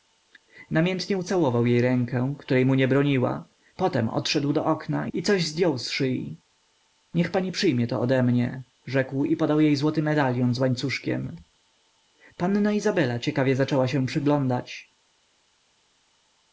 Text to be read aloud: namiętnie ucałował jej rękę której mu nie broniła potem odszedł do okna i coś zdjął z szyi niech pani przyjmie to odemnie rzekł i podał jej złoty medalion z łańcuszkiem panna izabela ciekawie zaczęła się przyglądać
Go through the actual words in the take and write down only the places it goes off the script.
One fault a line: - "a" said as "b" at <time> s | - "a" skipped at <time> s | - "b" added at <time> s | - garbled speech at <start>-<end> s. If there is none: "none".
none